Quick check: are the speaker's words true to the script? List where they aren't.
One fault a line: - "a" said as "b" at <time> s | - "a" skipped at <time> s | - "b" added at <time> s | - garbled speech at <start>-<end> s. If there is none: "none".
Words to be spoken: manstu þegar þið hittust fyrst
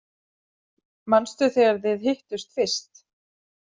none